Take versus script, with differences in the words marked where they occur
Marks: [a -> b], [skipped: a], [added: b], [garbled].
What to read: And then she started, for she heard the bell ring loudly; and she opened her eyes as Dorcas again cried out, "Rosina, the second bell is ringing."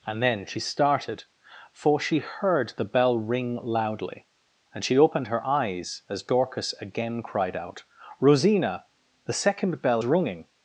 And then she started, for she heard the bell ring loudly; and she opened her eyes as Dorcas again cried out, "Rosina, the second bell [skipped: is] ringing."